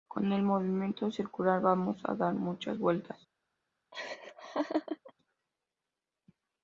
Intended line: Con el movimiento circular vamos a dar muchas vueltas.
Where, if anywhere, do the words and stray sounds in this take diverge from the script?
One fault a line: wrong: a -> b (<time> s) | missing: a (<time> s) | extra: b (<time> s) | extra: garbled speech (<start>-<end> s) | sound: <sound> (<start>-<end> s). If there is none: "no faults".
sound: laugh (3.9-5.1 s)